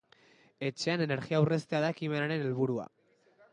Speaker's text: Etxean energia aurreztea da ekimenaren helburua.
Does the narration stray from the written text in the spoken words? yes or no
no